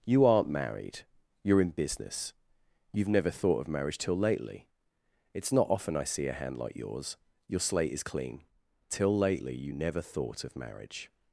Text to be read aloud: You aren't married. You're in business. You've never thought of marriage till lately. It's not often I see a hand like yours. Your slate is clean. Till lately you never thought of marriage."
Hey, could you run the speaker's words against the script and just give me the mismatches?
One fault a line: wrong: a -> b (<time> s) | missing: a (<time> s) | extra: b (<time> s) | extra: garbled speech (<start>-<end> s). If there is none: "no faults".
no faults